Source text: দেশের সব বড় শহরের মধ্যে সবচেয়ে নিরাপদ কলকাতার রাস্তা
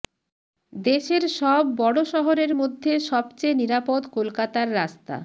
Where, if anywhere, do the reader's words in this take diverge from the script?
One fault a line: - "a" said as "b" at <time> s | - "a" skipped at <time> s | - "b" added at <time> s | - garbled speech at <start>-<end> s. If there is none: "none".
none